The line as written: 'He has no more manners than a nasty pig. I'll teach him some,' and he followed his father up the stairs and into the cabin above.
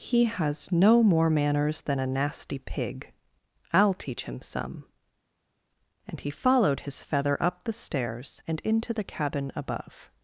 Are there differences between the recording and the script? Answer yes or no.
yes